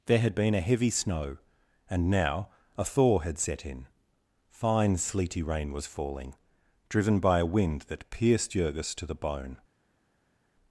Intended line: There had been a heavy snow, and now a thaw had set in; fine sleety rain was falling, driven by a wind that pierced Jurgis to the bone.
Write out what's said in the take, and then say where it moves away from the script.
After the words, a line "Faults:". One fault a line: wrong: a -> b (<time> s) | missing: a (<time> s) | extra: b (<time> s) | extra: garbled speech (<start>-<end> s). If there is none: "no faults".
There had been a heavy snow, and now a thaw had set in; fine sleety rain was falling, driven by a wind that pierced Jurgis to the bone.
Faults:
no faults